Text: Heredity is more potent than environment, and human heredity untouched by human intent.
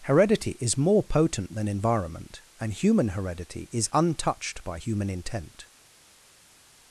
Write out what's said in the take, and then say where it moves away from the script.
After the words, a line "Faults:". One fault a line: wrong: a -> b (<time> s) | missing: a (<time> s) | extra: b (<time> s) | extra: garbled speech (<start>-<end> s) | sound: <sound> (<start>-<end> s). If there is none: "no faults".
Heredity is more potent than environment, and human heredity is untouched by human intent.
Faults:
extra: is (3.7 s)